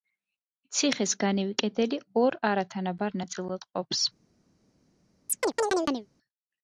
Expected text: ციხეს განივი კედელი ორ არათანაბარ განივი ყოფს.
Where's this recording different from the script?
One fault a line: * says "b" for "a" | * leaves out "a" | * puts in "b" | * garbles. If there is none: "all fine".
* says "ნაწილად" for "განივი"